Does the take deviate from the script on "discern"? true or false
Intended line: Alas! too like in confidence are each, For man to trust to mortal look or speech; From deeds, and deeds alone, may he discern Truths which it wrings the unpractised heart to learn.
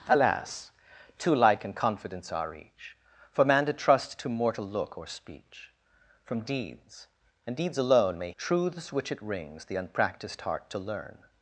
true